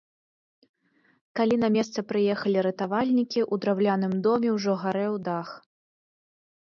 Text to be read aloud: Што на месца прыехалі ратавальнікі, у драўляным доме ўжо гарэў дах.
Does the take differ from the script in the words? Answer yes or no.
yes